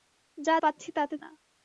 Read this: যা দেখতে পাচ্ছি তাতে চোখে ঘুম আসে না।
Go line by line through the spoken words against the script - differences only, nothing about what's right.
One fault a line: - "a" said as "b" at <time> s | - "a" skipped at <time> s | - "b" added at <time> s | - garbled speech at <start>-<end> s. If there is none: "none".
- "দেখতে" skipped at 0.6 s
- "চোখে ঘুম আসে" skipped at 1.2 s